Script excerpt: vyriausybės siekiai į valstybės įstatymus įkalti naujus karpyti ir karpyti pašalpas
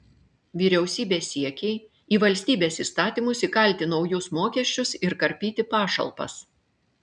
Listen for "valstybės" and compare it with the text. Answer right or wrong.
right